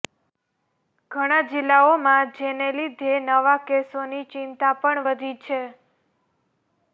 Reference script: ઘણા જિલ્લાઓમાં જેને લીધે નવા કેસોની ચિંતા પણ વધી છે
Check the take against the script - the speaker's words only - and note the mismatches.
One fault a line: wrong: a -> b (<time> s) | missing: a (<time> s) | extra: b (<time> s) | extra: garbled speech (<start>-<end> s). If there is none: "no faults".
no faults